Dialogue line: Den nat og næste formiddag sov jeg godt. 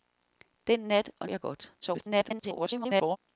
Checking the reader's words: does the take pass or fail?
fail